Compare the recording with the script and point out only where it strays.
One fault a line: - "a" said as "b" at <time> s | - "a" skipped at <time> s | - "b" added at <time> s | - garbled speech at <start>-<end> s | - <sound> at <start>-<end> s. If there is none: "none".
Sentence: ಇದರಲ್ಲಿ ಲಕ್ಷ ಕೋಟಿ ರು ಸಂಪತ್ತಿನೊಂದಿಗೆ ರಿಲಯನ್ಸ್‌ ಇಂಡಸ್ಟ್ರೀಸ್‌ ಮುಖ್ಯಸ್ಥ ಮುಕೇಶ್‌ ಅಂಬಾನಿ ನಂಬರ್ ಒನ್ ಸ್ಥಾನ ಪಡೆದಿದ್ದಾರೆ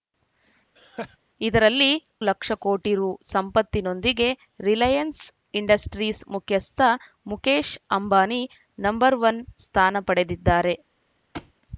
- laugh at 0.8-1.2 s
- thud at 11.3-11.5 s